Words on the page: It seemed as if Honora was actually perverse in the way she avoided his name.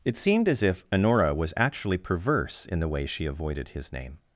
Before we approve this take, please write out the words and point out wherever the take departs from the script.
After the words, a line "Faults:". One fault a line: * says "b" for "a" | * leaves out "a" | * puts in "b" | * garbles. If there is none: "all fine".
It seemed as if Honora was actually perverse in the way she avoided his name.
Faults:
all fine